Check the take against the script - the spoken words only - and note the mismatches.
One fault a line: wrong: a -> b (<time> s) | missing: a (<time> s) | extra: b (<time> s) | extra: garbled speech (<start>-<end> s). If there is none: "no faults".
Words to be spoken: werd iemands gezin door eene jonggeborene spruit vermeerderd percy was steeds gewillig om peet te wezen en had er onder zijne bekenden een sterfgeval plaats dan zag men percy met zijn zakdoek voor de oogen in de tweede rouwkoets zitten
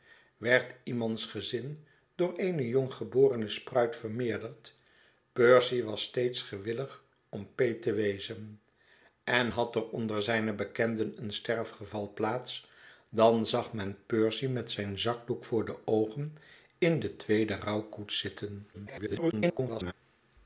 extra: garbled speech (18.7-19.9 s)